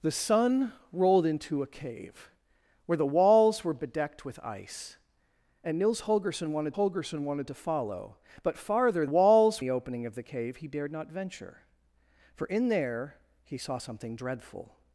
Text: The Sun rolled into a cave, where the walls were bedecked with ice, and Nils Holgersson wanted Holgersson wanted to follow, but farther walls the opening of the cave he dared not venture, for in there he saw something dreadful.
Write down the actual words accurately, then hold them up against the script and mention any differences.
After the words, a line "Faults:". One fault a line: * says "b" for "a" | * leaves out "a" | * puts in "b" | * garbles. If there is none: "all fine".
The Sun rolled into a cave, where the walls were bedecked with ice, and Nils Holgersson wanted Holgersson wanted to follow, but farther walls the opening of the cave he dared not venture, for in there he saw something dreadful.
Faults:
all fine